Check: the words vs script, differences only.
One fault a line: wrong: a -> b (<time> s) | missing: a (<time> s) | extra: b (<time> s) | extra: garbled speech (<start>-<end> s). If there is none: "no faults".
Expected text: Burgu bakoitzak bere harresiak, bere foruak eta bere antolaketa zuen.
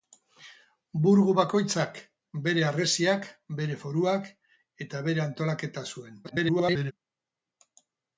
extra: garbled speech (6.2-6.9 s)